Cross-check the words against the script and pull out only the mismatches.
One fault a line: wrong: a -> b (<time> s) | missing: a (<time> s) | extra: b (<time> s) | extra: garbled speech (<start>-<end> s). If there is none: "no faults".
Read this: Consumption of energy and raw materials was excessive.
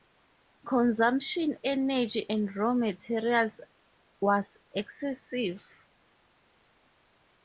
missing: of (1.6 s)